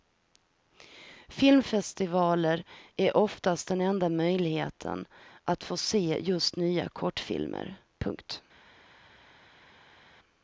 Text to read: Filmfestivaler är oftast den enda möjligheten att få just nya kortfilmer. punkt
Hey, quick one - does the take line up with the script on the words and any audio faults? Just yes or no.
no